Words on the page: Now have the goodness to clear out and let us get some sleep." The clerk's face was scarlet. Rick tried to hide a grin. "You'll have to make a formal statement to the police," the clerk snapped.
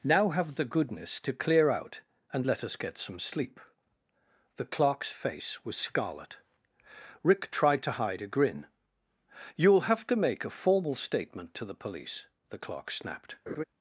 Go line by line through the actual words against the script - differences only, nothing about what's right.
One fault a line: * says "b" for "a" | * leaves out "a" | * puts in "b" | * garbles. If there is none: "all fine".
all fine